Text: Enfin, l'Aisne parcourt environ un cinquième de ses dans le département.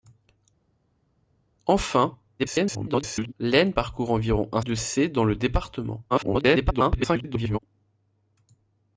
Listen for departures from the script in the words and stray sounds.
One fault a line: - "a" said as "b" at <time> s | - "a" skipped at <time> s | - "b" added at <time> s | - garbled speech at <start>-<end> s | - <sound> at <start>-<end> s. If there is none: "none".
- garbled speech at 2.4-3.3 s
- "cinquième" skipped at 4.6 s
- garbled speech at 6.1-7.6 s